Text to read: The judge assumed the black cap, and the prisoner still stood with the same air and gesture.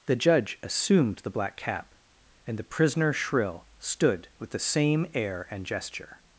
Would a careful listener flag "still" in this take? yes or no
yes